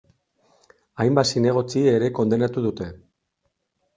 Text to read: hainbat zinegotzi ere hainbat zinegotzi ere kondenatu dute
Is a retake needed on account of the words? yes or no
yes